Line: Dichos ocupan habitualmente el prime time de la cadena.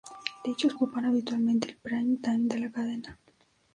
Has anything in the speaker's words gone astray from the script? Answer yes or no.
no